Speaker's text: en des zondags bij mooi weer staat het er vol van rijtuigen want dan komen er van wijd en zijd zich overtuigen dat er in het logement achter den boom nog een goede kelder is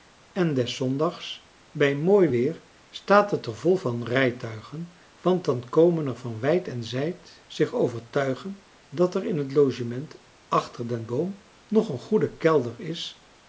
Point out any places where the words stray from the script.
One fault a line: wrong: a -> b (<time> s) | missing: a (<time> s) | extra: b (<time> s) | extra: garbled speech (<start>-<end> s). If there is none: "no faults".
no faults